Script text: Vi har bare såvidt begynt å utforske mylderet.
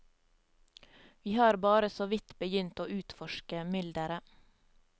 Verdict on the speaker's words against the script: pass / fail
pass